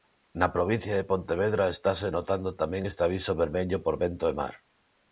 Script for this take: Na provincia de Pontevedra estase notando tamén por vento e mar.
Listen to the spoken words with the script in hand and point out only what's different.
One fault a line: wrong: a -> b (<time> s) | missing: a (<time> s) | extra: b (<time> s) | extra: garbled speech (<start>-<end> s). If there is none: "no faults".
extra: este aviso vermello (2.9 s)